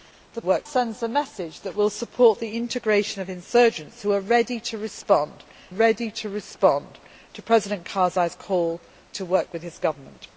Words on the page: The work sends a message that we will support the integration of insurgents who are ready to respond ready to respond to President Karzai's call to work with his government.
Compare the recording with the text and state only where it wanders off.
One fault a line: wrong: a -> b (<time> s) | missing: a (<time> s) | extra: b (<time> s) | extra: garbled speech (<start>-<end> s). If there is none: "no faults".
no faults